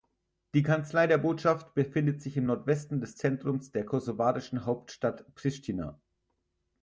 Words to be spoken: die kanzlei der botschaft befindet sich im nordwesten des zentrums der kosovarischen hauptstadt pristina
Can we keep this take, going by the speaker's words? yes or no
yes